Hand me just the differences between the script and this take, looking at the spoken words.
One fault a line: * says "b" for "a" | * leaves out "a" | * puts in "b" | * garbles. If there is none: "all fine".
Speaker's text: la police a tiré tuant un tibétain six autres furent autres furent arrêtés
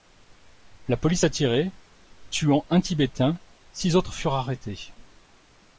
* leaves out "autres furent"